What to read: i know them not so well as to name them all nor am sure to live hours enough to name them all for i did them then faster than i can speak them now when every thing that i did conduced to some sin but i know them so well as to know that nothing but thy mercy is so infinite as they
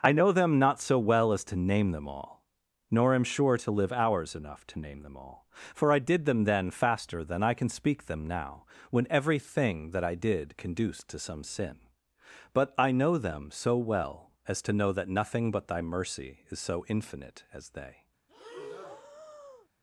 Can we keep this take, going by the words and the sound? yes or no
no